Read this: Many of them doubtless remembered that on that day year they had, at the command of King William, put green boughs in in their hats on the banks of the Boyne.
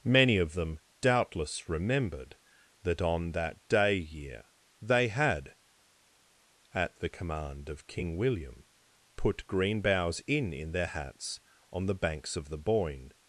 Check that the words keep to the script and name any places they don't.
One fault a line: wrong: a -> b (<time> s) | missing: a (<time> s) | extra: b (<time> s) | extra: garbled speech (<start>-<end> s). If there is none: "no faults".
no faults